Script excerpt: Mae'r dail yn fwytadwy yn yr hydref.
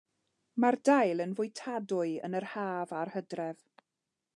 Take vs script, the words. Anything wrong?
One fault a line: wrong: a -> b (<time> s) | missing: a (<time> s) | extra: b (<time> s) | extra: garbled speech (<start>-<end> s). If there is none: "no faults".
extra: haf a'r (2.5 s)